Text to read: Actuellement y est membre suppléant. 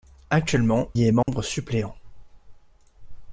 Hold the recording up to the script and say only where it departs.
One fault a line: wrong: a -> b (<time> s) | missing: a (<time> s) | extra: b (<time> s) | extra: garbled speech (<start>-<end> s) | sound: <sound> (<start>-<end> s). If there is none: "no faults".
sound: dropout (1.2-1.3 s)